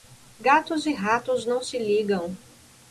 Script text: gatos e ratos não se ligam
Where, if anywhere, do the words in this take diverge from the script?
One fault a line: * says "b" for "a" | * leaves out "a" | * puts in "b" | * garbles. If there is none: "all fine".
all fine